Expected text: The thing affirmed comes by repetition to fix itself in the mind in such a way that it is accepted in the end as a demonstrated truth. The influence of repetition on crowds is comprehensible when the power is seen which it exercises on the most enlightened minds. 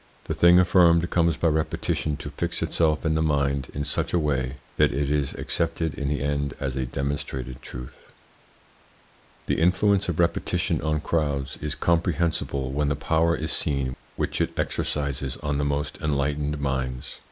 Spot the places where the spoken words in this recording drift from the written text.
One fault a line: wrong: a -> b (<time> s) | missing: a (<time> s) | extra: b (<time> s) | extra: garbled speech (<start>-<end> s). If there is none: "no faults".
no faults